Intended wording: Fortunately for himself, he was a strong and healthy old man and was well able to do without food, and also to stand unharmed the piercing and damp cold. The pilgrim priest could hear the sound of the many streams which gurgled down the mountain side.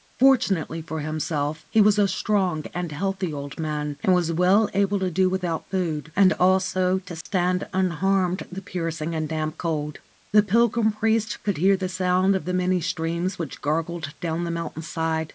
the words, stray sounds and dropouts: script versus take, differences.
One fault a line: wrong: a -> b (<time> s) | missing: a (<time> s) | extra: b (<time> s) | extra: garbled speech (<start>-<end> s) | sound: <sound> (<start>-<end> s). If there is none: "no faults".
sound: dropout (7.2-7.3 s)